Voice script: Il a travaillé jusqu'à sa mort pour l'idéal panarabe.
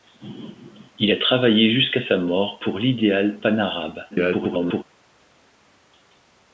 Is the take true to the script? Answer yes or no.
no